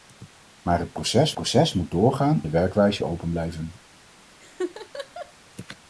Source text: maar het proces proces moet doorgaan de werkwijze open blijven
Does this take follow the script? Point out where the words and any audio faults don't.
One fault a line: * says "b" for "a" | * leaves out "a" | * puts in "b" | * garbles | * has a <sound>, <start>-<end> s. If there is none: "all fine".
* has a laugh, 4.4-5.3 s